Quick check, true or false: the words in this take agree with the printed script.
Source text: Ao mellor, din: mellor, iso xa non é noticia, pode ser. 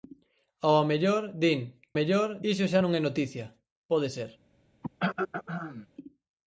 true